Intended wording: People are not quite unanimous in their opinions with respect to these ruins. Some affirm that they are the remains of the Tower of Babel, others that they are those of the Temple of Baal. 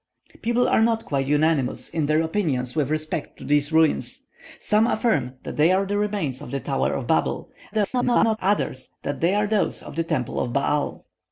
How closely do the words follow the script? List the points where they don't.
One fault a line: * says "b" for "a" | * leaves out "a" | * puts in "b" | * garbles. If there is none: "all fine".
* garbles